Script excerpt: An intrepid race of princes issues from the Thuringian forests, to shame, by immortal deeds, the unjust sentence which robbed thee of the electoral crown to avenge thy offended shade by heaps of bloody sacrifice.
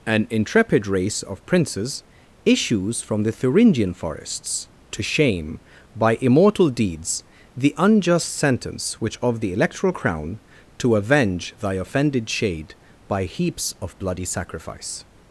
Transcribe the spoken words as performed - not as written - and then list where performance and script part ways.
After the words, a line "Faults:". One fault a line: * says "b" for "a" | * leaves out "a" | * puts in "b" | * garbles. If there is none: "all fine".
An intrepid race of princes issues from the Thuringian forests, to shame, by immortal deeds, the unjust sentence which of the electoral crown to avenge thy offended shade by heaps of bloody sacrifice.
Faults:
* leaves out "robbed thee"